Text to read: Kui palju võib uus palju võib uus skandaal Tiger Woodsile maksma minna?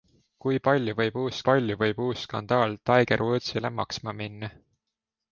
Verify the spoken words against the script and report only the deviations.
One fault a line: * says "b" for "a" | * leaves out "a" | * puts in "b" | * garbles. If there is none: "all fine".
all fine